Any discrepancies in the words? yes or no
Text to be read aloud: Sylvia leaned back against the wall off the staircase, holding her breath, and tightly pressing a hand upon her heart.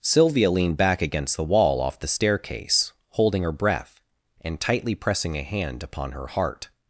no